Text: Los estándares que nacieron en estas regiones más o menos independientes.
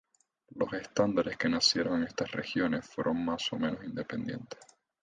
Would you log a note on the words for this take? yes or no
yes